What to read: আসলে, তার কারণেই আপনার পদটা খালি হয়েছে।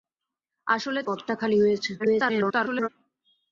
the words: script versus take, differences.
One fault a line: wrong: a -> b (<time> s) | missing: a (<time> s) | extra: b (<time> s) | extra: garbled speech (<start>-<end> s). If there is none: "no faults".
missing: তার কারণেই আপনার (1.0 s)
extra: garbled speech (2.0-2.9 s)